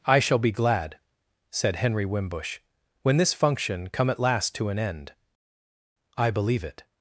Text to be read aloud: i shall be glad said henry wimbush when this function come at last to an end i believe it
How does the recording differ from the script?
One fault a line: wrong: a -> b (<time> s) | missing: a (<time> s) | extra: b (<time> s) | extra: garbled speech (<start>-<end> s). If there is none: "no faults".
no faults